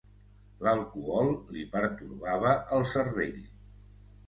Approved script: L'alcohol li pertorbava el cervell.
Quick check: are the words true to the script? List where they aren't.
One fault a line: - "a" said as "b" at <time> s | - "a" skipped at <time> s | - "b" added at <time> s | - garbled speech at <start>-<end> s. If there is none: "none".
none